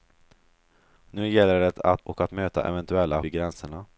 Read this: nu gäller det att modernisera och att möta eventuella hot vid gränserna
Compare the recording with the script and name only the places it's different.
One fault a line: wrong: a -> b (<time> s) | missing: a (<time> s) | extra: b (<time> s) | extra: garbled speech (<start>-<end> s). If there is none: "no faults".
missing: modernisera (2.0 s)
missing: hot (3.2 s)